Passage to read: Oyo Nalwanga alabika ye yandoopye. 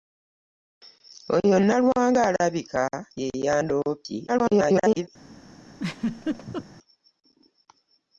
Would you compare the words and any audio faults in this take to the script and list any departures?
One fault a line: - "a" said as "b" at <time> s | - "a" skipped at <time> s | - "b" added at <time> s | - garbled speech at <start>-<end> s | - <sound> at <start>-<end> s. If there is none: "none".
- garbled speech at 4.3-5.1 s
- laugh at 5.7-6.7 s